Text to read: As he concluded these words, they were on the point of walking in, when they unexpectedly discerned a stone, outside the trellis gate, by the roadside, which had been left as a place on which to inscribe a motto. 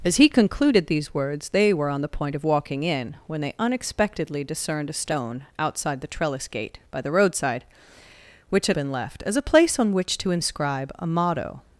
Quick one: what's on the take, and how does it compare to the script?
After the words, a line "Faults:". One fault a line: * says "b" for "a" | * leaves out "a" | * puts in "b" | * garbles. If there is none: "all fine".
As he concluded these words, they were on the point of walking in, when they unexpectedly discerned a stone, outside the trellis gate, by the roadside, which had been left as a place on which to inscribe a motto.
Faults:
all fine